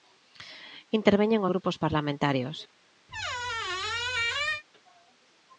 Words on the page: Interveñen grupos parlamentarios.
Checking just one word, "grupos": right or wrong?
right